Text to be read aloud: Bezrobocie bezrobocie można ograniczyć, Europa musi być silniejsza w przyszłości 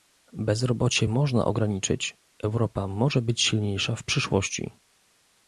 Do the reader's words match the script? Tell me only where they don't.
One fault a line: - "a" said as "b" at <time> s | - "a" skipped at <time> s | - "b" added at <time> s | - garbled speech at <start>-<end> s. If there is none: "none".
- "bezrobocie" skipped at 1.1 s
- "musi" said as "może" at 2.9 s